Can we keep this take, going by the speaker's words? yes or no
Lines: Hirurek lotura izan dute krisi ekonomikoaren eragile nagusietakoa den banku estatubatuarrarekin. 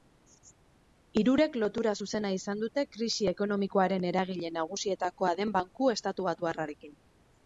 no